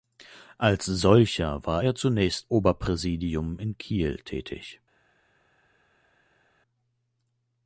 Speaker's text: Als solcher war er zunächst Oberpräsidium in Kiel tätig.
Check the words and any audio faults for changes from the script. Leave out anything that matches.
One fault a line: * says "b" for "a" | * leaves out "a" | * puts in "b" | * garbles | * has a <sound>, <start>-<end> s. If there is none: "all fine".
all fine